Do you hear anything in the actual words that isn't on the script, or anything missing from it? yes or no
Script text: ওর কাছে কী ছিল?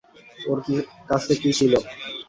no